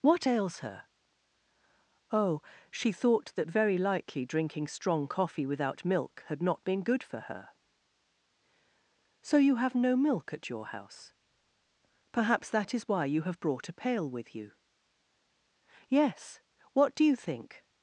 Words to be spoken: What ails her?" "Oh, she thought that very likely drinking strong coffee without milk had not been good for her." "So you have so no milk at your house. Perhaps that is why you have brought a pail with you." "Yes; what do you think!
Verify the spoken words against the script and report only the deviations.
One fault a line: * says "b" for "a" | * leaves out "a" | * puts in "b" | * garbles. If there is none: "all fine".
* leaves out "so"